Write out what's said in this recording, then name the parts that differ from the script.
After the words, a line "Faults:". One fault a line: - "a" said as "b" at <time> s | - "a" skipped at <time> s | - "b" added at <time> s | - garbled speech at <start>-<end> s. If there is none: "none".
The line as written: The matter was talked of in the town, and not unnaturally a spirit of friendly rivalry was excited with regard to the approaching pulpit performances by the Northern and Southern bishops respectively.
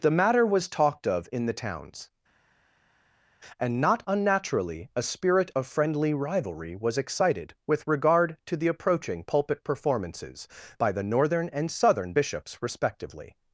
The matter was talked of in the towns, and not unnaturally a spirit of friendly rivalry was excited with regard to the approaching pulpit performances by the Northern and Southern bishops respectively.
Faults:
- "town" said as "towns" at 1.5 s